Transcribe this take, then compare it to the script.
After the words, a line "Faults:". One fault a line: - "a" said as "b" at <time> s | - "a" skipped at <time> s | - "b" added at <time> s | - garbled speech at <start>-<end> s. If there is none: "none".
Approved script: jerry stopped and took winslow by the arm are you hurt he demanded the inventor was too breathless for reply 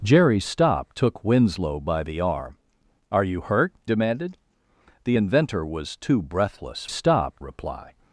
jerry stopped took winslow by the arm are you hurt demanded the inventor was too breathless stopped reply
Faults:
- "and" skipped at 1.0 s
- "he" skipped at 3.8 s
- "for" said as "stopped" at 6.9 s